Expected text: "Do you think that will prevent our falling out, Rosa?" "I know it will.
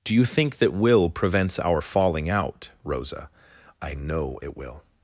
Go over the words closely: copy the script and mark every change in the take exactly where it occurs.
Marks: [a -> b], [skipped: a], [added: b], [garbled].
"Do you think that will [prevent -> prevents] our falling out, Rosa?" "I know it will.